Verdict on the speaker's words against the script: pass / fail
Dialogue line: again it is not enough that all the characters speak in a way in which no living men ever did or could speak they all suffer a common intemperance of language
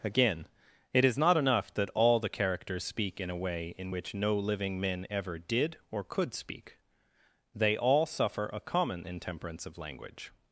pass